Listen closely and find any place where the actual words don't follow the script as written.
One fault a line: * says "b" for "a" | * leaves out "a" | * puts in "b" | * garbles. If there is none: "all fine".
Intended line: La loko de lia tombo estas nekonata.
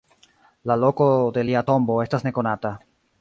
all fine